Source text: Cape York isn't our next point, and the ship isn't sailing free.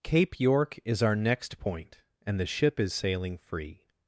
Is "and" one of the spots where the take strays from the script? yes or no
no